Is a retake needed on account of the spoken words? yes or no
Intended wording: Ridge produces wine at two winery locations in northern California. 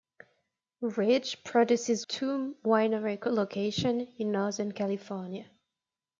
yes